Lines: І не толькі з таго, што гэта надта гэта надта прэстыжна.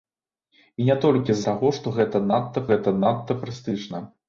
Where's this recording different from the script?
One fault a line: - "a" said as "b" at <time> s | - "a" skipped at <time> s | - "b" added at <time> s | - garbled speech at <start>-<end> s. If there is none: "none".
none